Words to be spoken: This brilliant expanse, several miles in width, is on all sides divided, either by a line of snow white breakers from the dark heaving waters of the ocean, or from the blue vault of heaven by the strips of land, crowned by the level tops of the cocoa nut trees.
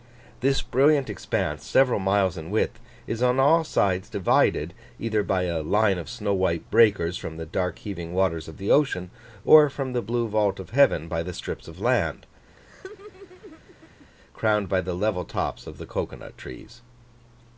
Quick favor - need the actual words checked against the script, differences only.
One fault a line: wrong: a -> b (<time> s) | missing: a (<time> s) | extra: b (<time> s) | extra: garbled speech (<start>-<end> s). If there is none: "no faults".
no faults